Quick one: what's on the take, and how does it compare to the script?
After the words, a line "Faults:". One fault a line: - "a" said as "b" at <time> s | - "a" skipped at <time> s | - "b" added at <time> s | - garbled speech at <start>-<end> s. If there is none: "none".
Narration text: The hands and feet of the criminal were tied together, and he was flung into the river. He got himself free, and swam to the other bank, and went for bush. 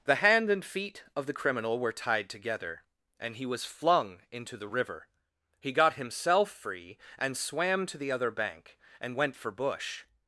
The hand and feet of the criminal were tied together, and he was flung into the river. He got himself free, and swam to the other bank, and went for bush.
Faults:
- "hands" said as "hand" at 0.1 s